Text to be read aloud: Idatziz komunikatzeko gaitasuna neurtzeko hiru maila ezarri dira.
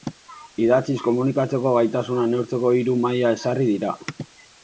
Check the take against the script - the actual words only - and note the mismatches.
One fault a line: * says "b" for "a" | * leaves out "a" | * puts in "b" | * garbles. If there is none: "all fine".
all fine